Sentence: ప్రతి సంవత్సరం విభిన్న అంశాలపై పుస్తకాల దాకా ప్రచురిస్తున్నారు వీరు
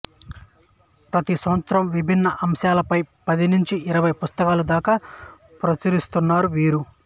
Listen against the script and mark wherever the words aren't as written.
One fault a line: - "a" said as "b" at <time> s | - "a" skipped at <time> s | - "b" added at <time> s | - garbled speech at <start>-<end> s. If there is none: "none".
- "పది నుంచి ఇరవై" added at 3.3 s